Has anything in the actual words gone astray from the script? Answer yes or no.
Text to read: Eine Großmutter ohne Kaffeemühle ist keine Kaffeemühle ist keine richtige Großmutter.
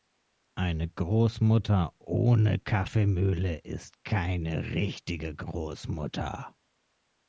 yes